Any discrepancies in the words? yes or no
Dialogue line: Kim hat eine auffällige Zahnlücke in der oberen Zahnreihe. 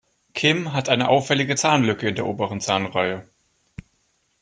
no